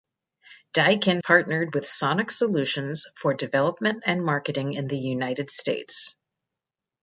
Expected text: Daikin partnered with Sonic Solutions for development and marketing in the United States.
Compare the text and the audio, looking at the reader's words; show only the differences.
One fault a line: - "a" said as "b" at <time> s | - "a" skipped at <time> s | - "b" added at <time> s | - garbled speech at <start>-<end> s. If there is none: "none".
none